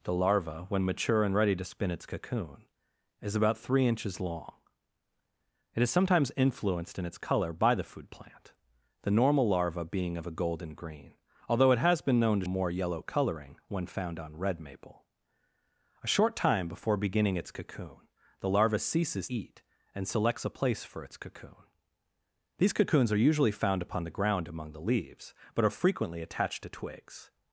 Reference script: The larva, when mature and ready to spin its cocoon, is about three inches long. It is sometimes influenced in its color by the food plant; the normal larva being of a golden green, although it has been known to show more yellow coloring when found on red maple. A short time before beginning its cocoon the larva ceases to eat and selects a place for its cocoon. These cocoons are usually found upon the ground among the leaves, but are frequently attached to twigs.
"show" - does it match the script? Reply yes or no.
no